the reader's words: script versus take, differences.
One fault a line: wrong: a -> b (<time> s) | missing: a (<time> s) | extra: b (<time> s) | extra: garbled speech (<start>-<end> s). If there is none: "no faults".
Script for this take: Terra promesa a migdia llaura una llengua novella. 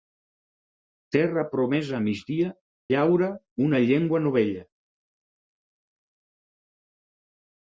no faults